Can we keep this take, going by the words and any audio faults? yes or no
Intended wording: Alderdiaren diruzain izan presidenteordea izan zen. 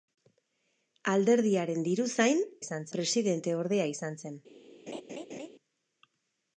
no